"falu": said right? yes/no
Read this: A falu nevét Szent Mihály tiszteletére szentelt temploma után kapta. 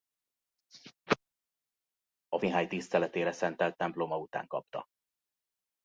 no